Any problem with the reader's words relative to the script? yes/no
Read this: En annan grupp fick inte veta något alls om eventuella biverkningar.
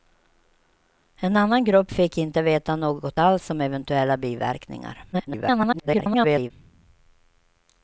yes